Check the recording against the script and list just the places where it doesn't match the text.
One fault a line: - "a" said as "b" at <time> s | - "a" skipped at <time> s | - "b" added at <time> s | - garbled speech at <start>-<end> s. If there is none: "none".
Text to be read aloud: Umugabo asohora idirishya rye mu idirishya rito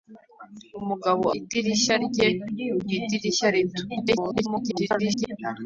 - "asohora" skipped at 1.2 s
- garbled speech at 3.9-5.3 s